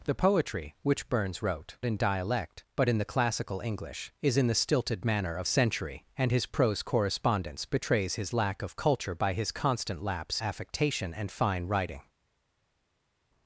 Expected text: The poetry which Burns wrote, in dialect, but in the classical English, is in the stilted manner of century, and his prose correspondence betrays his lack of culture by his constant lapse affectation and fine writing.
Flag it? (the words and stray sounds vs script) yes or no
no